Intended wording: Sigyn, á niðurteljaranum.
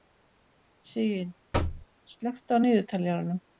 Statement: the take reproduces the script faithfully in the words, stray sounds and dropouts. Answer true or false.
false